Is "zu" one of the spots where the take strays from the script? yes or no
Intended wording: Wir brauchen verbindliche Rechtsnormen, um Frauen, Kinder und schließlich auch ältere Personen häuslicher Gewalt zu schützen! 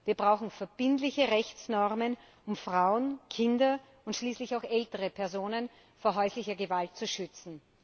no